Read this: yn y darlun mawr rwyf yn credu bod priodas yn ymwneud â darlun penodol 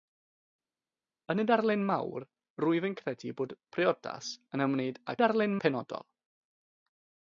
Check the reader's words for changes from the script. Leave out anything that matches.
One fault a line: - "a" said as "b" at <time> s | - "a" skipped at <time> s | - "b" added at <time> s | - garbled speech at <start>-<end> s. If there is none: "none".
none